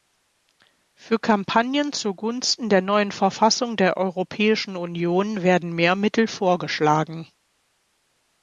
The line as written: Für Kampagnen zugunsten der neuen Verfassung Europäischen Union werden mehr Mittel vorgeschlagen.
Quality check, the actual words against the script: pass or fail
fail